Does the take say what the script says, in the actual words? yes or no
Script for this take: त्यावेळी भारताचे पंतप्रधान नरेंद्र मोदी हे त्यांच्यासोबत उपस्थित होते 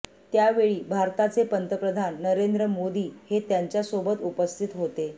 yes